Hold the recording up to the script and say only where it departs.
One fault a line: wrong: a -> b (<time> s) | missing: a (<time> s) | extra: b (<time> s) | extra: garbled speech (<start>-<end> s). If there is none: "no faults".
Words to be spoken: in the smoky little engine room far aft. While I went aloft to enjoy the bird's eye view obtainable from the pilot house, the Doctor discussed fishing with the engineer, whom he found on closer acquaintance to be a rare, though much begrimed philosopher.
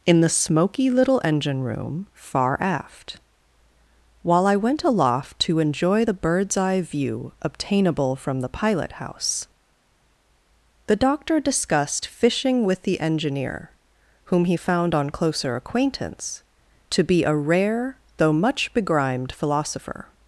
no faults